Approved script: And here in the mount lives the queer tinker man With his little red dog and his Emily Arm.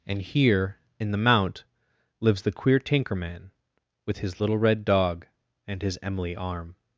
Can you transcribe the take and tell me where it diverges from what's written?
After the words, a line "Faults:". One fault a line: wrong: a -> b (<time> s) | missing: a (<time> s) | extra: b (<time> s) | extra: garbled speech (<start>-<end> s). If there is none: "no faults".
And here in the mount lives the queer tinker man With his little red dog and his Emily Arm.
Faults:
no faults